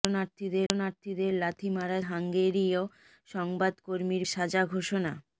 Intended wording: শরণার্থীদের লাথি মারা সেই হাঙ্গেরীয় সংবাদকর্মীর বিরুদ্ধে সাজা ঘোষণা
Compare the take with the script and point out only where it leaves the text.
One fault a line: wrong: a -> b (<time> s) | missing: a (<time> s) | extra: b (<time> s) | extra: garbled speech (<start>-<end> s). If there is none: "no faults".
extra: শরণার্থীদের (0.7 s)
missing: সেই (2.0 s)
missing: বিরুদ্ধে (4.2 s)